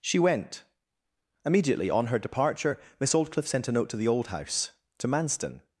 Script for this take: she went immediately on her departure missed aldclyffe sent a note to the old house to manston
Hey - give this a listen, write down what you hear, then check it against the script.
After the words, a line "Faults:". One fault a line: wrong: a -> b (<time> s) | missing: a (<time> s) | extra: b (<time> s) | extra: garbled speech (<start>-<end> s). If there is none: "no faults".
she went immediately on her departure miss aldclyffe sent a note to the old house to manston
Faults:
wrong: missed -> miss (3.0 s)